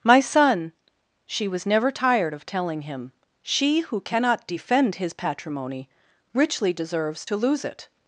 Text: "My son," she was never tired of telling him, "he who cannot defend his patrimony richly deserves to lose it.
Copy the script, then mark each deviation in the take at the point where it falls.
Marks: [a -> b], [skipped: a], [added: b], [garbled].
"My son," she was never tired of telling him, ["he -> she] who cannot defend his patrimony richly deserves to lose it.